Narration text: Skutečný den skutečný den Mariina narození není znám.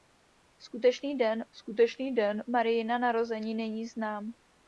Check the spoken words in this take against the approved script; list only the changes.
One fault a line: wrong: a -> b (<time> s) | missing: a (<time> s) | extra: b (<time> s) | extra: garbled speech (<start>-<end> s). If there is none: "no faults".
no faults